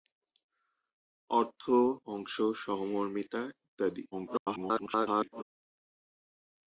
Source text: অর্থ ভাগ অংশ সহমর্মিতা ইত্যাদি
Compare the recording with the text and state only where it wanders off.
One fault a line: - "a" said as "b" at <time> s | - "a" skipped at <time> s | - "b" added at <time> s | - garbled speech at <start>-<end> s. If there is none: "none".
- "ভাগ" skipped at 1.6 s
- garbled speech at 4.1-5.4 s